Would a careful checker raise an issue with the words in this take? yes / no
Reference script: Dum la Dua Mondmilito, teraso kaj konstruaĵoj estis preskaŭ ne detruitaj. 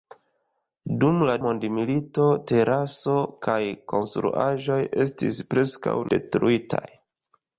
yes